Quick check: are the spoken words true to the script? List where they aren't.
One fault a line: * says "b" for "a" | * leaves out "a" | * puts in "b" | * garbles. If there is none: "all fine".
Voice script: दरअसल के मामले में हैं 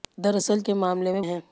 all fine